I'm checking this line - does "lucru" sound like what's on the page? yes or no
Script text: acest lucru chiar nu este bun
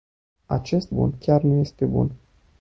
no